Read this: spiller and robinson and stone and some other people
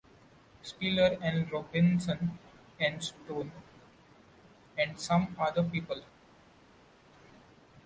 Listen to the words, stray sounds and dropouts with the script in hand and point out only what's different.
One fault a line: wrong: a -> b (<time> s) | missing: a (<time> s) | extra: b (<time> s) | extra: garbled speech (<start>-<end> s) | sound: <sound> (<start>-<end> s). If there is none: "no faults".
no faults